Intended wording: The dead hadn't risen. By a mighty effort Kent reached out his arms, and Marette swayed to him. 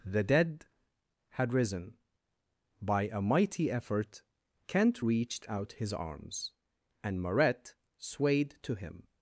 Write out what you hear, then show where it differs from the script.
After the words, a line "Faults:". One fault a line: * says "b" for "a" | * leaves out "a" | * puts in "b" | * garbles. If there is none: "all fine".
The dead had risen. By a mighty effort Kent reached out his arms, and Marette swayed to him.
Faults:
* says "had" for "hadn't"